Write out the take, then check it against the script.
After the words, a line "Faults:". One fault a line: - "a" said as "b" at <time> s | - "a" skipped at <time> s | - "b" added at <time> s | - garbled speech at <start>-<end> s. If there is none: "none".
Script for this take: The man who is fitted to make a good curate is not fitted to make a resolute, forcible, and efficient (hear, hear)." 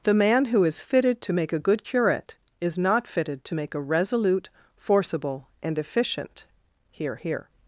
The man who is fitted to make a good curate is not fitted to make a resolute, forcible, and efficient (hear, hear)."
Faults:
none